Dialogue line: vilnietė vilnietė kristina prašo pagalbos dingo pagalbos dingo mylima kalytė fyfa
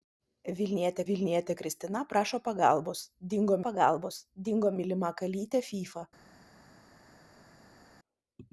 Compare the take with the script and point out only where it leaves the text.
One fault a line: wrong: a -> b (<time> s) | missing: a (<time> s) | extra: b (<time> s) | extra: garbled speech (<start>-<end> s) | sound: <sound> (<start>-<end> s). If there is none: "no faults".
no faults